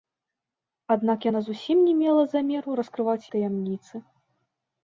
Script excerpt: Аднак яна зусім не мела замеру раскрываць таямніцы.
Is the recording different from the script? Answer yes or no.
no